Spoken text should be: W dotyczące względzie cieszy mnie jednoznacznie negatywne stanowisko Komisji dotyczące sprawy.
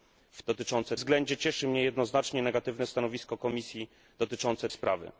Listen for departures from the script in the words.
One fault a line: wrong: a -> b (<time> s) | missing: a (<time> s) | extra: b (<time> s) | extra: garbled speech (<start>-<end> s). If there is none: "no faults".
no faults